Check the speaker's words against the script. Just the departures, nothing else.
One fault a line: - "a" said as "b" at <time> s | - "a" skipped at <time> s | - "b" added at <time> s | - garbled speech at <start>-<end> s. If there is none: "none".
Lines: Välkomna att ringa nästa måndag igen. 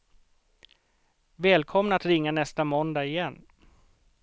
none